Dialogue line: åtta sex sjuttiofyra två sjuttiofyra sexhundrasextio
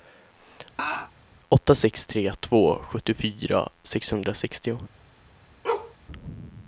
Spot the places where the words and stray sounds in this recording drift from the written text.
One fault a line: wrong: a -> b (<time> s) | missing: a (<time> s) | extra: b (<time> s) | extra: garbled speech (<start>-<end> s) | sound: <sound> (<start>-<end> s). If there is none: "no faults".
sound: laugh (0.8-1.1 s)
wrong: sjuttiofyra -> tre (2.1 s)
sound: bark (5.6-5.9 s)